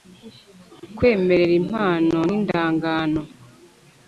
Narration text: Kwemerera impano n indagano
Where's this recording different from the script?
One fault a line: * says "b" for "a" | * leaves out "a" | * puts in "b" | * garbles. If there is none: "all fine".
all fine